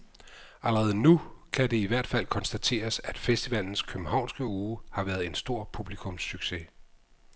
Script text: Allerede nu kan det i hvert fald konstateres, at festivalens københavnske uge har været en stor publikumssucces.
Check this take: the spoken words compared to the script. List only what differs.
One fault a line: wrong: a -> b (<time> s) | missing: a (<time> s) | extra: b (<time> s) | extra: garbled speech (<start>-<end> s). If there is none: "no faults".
no faults